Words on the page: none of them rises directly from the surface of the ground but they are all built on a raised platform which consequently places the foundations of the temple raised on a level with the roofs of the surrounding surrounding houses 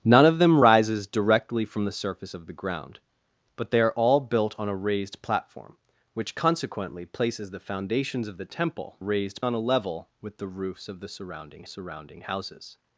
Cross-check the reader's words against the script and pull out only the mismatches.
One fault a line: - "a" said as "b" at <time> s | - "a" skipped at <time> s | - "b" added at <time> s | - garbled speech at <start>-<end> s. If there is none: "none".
none